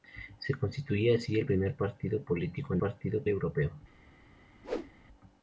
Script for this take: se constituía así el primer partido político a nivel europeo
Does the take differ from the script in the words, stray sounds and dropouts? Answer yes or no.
yes